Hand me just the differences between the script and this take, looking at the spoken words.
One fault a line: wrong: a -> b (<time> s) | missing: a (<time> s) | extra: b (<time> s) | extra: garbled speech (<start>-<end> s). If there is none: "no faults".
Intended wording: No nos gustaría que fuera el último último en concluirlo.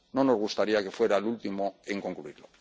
missing: último (1.8 s)